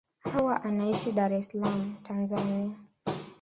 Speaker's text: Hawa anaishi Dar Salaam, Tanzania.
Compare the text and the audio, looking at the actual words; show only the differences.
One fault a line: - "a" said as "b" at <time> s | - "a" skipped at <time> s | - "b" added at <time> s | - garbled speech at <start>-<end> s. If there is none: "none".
- "es" added at 1.3 s